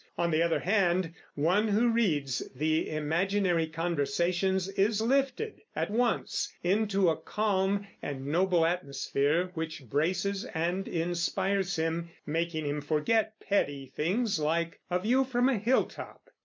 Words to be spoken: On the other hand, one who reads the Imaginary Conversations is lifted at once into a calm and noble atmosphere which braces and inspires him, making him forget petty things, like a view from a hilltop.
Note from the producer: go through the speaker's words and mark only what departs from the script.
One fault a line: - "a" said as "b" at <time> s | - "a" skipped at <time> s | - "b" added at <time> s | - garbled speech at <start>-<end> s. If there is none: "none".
none